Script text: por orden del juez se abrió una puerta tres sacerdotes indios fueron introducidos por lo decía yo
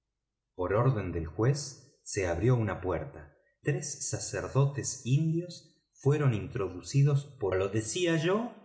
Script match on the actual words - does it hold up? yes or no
yes